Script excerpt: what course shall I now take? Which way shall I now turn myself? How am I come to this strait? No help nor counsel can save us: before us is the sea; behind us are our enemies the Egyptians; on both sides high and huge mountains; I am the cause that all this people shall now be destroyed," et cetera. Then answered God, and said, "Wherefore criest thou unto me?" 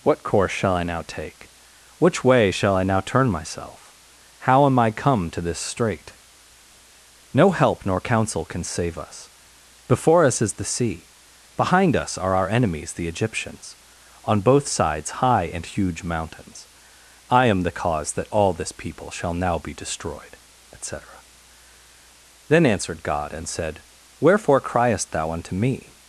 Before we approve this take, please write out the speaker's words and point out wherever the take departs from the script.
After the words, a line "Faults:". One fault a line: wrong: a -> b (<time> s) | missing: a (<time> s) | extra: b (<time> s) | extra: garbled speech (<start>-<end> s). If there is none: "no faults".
what course shall I now take? Which way shall I now turn myself? How am I come to this strait? No help nor counsel can save us: before us is the sea; behind us are our enemies the Egyptians; on both sides high and huge mountains; I am the cause that all this people shall now be destroyed," et cetera. Then answered God, and said, "Wherefore criest thou unto me?"
Faults:
no faults